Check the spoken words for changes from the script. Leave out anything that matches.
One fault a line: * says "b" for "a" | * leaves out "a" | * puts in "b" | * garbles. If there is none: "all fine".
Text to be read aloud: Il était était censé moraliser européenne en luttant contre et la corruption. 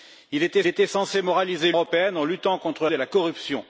all fine